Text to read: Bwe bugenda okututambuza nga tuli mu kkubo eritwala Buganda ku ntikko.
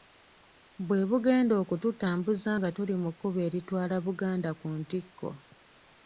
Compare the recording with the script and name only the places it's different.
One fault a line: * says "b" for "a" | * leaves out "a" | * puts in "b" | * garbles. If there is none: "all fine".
all fine